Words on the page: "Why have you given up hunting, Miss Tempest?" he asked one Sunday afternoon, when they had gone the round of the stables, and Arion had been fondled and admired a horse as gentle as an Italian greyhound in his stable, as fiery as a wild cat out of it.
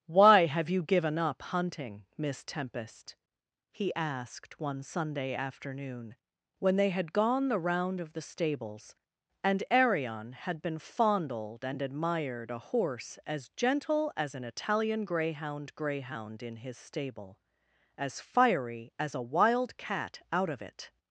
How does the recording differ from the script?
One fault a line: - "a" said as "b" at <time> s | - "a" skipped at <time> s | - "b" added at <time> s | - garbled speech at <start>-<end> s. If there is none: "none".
- "greyhound" added at 15.8 s